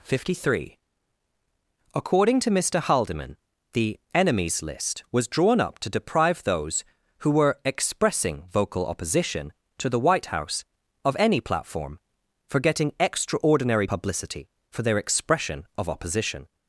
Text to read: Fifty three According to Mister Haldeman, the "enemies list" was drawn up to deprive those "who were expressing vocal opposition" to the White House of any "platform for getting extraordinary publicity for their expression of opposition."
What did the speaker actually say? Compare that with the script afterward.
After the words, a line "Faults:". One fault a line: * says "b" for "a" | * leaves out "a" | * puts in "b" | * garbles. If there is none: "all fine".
Fifty three According to Mister Haldeman, the "enemies list" was drawn up to deprive those "who were expressing vocal opposition" to the White House of any "platform for getting extraordinary publicity for their expression of opposition."
Faults:
all fine